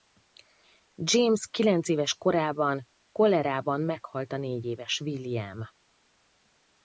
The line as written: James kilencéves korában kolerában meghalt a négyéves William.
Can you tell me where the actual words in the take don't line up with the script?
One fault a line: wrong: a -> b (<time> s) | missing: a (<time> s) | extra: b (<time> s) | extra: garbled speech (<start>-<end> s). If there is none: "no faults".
no faults